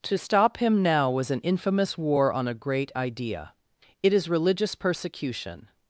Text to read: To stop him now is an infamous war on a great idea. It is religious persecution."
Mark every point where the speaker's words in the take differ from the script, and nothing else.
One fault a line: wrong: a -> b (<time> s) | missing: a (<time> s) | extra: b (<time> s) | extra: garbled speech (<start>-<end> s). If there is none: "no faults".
wrong: is -> was (1.1 s)